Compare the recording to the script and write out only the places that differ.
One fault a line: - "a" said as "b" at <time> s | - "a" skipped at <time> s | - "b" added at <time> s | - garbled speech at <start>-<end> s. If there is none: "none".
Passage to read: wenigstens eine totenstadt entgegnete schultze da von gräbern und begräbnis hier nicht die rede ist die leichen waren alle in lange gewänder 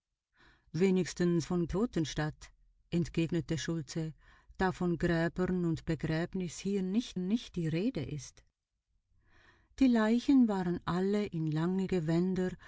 - "eine" said as "von" at 1.4 s
- "nicht" added at 7.2 s